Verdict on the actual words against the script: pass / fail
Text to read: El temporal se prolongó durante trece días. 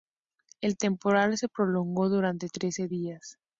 pass